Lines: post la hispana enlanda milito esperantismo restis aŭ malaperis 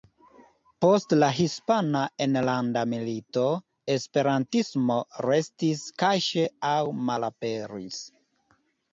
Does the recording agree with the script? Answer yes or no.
no